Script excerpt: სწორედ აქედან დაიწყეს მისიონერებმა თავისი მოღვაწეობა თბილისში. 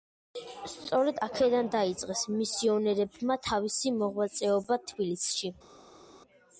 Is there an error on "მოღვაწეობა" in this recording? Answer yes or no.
no